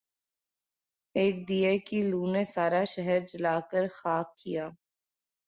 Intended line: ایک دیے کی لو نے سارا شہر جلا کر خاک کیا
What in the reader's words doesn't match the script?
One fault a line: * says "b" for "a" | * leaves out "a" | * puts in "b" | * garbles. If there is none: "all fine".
all fine